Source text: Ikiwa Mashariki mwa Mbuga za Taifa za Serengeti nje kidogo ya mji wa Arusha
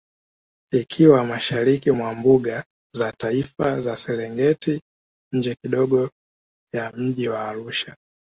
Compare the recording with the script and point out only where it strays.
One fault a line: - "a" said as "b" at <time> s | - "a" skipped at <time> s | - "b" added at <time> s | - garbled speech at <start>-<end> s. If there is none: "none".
none